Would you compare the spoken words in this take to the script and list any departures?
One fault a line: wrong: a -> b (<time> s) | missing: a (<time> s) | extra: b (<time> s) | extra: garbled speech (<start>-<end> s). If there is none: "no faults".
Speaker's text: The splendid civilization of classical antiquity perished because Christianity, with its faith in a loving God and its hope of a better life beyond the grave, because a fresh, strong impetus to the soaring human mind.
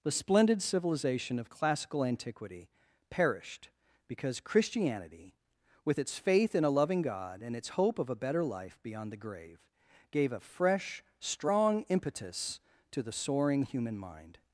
wrong: because -> gave (10.1 s)